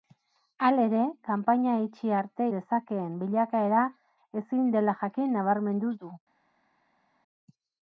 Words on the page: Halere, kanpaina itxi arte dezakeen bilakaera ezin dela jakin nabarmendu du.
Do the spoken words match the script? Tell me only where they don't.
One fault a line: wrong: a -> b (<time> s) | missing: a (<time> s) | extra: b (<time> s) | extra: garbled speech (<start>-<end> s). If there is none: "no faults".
no faults